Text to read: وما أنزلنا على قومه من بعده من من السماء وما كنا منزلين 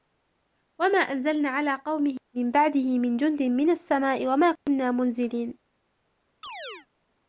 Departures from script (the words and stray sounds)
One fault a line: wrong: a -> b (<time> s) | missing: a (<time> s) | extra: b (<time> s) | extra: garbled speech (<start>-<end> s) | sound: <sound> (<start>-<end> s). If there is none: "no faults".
extra: جند (3.2 s)
sound: dropout (4.6-4.7 s)
sound: chirp (6.4-6.9 s)